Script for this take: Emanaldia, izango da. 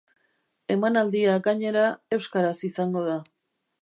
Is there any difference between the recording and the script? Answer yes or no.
yes